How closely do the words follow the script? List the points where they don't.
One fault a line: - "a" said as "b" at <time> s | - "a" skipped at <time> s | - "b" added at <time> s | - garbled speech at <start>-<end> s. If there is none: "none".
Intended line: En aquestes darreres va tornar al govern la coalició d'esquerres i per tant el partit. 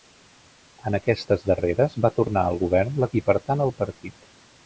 - "coalició d'esquerres" skipped at 3.1 s